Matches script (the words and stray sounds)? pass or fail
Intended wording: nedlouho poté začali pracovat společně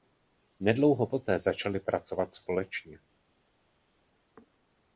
pass